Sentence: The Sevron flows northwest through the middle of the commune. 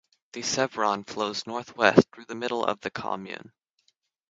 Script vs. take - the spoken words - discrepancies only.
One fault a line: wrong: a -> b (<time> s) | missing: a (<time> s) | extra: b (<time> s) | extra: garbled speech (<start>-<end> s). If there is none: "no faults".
no faults